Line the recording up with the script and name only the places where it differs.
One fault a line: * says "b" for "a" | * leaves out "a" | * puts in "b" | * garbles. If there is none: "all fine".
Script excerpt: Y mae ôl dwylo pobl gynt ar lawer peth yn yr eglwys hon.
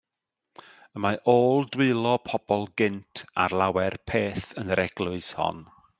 all fine